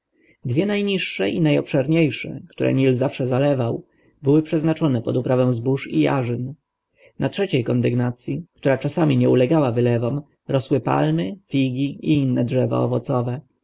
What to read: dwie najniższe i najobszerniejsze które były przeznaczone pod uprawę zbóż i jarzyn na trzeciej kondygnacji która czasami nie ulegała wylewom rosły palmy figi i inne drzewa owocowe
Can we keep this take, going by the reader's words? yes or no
no